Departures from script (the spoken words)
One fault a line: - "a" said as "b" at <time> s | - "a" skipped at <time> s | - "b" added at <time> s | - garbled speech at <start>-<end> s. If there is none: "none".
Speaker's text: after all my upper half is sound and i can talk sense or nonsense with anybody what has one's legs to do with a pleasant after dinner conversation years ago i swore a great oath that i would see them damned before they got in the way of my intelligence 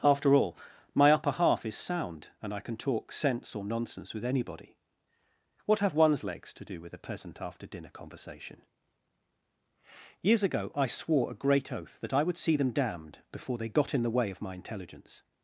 - "has" said as "have" at 5.8 s